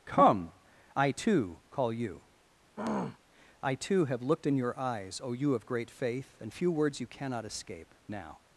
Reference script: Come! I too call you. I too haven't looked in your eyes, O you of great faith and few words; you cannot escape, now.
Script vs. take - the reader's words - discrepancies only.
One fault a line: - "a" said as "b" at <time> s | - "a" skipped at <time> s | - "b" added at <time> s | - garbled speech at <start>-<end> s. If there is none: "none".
- "haven't" said as "have" at 4.0 s